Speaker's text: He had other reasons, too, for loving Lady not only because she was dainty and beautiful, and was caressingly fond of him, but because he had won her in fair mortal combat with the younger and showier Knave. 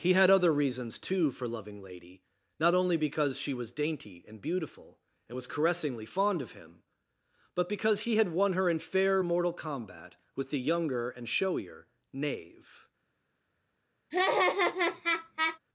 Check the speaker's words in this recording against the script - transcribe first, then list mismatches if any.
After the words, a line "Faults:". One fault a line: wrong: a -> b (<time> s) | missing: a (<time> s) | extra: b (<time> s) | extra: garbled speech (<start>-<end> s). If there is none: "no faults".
He had other reasons, too, for loving Lady not only because she was dainty and beautiful, and was caressingly fond of him, but because he had won her in fair mortal combat with the younger and showier Knave.
Faults:
no faults